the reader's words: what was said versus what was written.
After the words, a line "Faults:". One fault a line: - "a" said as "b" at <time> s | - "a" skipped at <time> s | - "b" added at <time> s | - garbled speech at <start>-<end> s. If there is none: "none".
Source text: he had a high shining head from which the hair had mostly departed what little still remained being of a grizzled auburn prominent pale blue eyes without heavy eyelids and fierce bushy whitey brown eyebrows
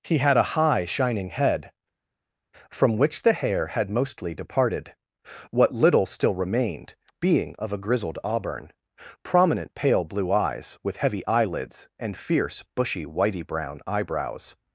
he had a high shining head from which the hair had mostly departed what little still remained being of a grizzled auburn prominent pale blue eyes with heavy eyelids and fierce bushy whitey brown eyebrows
Faults:
- "without" said as "with" at 10.8 s